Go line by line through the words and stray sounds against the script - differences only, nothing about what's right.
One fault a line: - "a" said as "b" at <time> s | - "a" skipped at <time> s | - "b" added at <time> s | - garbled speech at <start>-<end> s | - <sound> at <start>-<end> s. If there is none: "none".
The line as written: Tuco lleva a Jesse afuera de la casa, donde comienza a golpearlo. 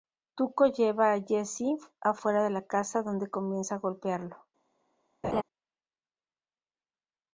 - laugh at 5.2-5.4 s